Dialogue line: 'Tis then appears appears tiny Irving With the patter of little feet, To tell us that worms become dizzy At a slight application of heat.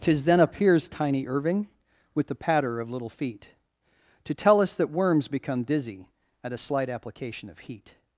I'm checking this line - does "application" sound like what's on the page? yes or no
yes